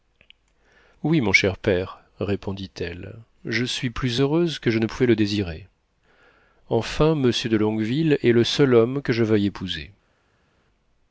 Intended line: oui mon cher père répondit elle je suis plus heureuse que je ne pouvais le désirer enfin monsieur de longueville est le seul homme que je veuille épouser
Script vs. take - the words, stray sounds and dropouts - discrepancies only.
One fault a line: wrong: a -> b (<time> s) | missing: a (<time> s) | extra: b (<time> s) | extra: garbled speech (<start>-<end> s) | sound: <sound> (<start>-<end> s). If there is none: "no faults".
no faults